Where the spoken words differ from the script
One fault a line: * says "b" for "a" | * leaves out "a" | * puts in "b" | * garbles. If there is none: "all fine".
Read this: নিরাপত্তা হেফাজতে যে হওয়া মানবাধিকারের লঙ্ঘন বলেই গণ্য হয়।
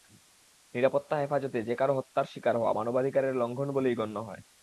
* puts in "কারও হত্যার শিকার"